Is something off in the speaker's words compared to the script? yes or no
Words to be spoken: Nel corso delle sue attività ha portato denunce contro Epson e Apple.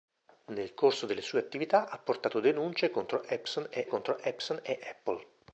yes